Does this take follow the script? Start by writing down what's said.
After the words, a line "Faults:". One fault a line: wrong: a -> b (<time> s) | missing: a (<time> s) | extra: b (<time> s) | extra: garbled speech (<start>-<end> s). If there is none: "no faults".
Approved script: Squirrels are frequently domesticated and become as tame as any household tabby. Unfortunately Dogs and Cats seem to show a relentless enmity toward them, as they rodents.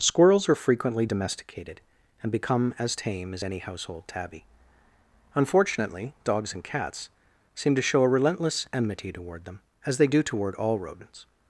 Squirrels are frequently domesticated and become as tame as any household tabby. Unfortunately Dogs and Cats seem to show a relentless enmity toward them, as they do toward all rodents.
Faults:
extra: do toward all (10.1 s)